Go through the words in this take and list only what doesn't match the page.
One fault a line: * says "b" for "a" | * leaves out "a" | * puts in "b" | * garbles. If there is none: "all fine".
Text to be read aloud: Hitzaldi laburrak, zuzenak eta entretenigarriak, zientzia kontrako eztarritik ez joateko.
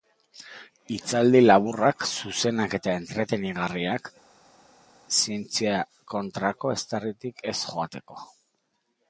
all fine